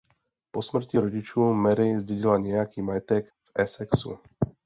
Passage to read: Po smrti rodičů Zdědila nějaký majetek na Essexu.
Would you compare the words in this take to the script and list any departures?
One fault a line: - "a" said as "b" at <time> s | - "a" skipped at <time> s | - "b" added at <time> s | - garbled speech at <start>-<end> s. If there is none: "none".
- "Mary" added at 1.5 s
- "na" said as "v" at 3.3 s